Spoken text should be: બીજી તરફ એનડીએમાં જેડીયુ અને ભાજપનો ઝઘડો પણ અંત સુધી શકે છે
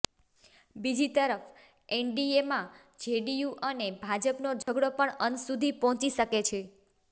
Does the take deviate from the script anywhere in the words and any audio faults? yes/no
yes